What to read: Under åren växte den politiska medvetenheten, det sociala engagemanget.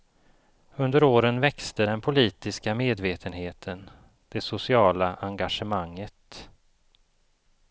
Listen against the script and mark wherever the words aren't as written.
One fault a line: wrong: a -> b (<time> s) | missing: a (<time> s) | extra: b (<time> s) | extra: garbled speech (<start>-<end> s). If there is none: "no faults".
no faults